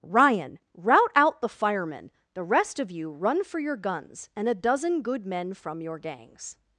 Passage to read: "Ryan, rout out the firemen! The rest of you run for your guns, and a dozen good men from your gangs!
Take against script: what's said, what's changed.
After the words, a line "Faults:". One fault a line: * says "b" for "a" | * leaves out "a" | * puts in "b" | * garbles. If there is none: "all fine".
"Ryan, rout out the firemen! The rest of you run for your guns, and a dozen good men from your gangs!
Faults:
all fine